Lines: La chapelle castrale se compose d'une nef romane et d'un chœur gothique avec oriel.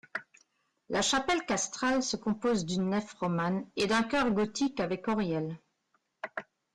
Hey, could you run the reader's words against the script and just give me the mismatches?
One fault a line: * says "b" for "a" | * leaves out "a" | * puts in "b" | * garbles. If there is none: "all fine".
all fine